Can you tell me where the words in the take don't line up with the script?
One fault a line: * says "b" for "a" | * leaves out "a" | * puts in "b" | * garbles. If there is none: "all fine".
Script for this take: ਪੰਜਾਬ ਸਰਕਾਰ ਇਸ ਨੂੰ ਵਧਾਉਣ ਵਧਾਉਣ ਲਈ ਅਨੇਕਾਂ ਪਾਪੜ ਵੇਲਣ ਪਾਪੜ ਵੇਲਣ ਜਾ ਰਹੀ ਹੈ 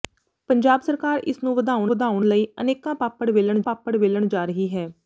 all fine